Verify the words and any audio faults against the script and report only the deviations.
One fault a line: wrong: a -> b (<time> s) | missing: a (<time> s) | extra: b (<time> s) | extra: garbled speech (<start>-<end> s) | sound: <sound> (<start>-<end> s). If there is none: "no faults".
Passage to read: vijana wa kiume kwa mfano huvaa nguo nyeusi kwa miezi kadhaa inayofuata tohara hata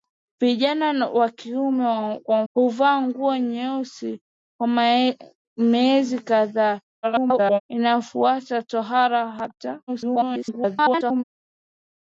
missing: mfano (2.4 s)
extra: garbled speech (7.0-7.6 s)
extra: garbled speech (9.9-11.2 s)